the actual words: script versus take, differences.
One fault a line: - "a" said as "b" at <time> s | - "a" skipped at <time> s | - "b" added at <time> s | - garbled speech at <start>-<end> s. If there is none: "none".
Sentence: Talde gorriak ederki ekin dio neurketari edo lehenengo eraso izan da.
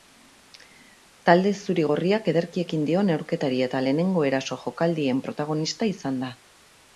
- "zuri" added at 1.6 s
- "edo" said as "eta" at 3.7 s
- "jokaldien protagonista" added at 4.6 s